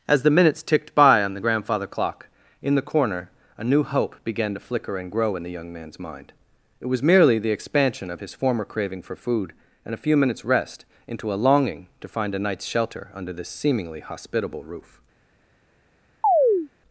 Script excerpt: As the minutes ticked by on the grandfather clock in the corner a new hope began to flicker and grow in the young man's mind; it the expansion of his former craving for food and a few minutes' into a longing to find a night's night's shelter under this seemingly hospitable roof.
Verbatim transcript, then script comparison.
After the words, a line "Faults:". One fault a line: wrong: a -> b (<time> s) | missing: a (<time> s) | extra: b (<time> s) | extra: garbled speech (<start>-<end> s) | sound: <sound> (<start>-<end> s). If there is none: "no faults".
As the minutes ticked by on the grandfather clock in the corner a new hope began to flicker and grow in the young man's mind; it was merely the expansion of his former craving for food and a few minutes' rest into a longing to find a night's shelter under this seemingly hospitable roof.
Faults:
extra: was merely (6.8 s)
extra: rest (10.5 s)
missing: night's (12.7 s)
sound: chirp (16.2-16.7 s)